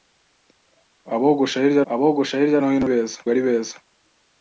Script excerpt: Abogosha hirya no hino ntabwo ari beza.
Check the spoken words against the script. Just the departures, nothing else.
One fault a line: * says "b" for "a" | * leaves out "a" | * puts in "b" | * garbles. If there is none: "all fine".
* puts in "abogosha hirya"
* says "beza" for "ntabwo"